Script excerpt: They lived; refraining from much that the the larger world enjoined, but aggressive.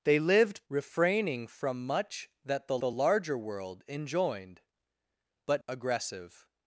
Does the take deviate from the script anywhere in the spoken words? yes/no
no